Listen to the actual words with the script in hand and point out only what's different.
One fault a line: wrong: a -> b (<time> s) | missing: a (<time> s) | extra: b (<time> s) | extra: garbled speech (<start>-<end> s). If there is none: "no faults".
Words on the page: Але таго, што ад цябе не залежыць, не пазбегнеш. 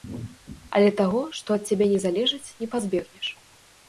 no faults